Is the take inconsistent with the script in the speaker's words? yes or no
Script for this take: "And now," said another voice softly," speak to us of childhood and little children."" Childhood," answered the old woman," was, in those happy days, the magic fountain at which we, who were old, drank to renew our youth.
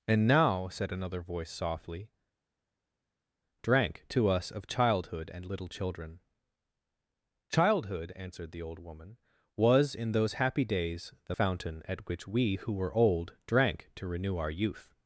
yes